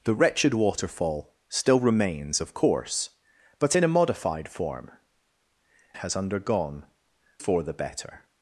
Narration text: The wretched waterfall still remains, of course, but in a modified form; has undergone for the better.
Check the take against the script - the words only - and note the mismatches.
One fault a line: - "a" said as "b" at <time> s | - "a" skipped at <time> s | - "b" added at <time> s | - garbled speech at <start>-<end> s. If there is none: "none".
none